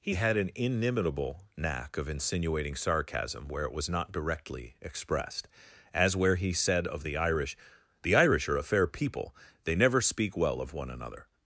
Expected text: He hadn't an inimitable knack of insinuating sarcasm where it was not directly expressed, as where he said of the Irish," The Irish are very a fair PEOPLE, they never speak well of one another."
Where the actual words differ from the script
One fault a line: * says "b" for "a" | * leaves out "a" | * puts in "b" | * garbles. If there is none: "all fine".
* says "had" for "hadn't"
* leaves out "very"